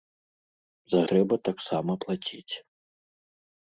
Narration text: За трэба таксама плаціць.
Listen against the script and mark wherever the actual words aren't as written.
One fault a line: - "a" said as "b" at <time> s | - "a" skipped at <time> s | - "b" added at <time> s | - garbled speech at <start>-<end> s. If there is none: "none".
none